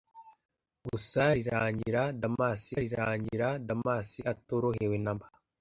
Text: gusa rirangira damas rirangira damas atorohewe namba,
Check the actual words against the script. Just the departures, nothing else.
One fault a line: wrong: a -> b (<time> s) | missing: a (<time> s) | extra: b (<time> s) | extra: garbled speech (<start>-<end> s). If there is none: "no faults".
no faults